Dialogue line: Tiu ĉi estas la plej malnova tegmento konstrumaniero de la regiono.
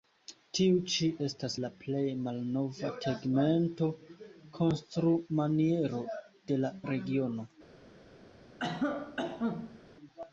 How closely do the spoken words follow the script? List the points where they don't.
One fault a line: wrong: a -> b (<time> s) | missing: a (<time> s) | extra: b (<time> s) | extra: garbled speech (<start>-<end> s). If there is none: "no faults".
no faults